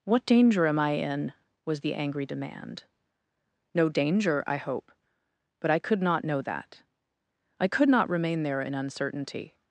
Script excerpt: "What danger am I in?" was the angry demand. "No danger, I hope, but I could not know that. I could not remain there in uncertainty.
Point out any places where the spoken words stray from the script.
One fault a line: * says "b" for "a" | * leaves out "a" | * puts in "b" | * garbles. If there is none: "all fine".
all fine